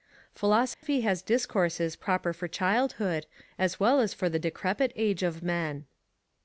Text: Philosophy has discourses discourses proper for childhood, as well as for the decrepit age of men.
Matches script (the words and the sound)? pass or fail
fail